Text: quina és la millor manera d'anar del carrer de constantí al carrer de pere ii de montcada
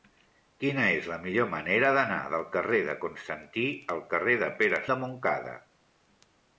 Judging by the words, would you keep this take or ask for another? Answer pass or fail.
fail